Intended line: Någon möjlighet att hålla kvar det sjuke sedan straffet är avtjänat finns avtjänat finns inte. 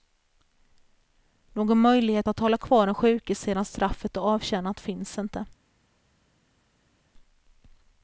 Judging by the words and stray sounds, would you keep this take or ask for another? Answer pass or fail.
fail